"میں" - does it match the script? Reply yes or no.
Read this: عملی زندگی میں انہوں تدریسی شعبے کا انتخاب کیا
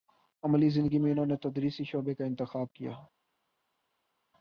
yes